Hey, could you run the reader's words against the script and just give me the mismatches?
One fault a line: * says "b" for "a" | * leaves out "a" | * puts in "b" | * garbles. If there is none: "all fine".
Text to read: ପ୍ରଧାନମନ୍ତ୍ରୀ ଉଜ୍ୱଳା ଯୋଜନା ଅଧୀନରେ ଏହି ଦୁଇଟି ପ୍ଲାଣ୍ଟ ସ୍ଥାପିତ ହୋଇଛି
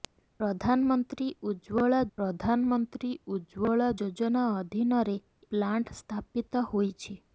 * puts in "ପ୍ରଧାନମନ୍ତ୍ରୀ ଉଜ୍ୱଳା"
* leaves out "ଏହି ଦୁଇଟି"